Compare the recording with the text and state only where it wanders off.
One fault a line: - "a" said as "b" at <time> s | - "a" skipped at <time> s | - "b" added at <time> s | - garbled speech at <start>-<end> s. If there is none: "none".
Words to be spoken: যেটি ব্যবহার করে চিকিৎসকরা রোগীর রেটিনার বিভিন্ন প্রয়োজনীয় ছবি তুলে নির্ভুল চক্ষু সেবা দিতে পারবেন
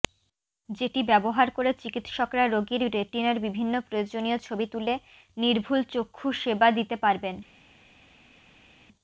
none